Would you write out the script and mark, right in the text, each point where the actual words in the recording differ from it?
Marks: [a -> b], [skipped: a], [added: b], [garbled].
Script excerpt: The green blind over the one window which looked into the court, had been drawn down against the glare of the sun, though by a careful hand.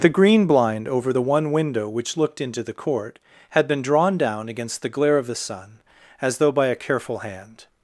The green blind over the one window which looked into the court, had been drawn down against the glare of the sun, [added: as] though by a careful hand.